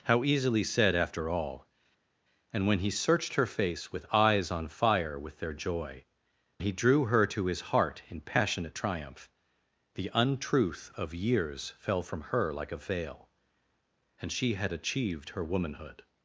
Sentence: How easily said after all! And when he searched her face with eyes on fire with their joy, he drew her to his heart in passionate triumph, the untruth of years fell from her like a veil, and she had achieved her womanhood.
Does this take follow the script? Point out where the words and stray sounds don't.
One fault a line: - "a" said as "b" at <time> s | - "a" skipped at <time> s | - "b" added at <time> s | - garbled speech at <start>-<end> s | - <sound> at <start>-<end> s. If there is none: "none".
none